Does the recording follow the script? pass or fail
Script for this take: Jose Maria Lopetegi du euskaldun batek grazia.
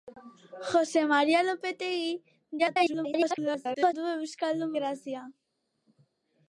fail